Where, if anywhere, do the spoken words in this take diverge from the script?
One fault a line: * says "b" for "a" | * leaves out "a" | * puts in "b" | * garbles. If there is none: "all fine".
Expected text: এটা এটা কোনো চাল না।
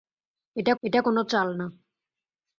all fine